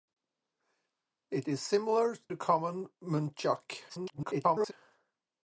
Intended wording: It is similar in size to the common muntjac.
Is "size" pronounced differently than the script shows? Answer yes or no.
yes